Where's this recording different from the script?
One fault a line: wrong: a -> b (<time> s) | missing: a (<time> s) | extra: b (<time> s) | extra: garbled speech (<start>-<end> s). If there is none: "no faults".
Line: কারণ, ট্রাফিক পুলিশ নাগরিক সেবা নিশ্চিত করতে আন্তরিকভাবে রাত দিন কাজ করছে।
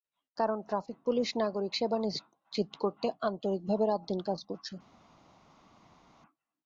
no faults